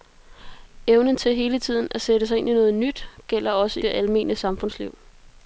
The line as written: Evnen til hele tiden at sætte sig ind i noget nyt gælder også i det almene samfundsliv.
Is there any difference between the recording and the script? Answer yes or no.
yes